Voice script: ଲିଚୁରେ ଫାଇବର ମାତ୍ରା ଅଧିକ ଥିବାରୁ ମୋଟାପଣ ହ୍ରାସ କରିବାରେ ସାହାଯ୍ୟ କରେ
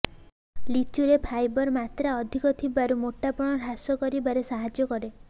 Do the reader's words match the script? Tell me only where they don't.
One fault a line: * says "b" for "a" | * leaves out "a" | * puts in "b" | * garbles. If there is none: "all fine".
all fine